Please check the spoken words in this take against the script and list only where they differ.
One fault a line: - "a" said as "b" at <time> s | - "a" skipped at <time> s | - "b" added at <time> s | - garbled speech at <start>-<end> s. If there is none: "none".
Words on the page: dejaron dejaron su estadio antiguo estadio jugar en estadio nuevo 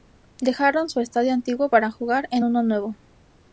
- "dejaron" skipped at 0.9 s
- "estadio" said as "para" at 1.7 s
- "estadio" said as "uno" at 2.4 s